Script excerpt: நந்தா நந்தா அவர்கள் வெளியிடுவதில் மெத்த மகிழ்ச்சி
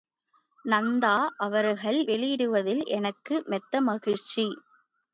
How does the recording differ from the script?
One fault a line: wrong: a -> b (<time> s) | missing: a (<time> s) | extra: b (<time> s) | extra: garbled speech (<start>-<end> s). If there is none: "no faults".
missing: நந்தா (1.1 s)
extra: எனக்கு (2.9 s)